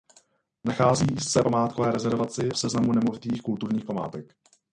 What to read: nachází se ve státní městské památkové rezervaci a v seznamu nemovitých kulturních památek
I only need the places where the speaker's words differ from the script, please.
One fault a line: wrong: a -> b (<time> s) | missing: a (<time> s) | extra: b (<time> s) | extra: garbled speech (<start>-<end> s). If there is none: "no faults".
missing: ve státní městské (1.4 s)
missing: a (2.5 s)